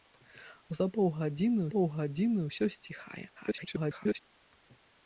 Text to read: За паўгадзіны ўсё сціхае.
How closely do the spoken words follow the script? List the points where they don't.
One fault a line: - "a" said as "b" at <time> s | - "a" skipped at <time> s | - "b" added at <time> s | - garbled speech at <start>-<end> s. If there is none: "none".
- "паўгадзіны" added at 1.7 s
- garbled speech at 3.4-4.2 s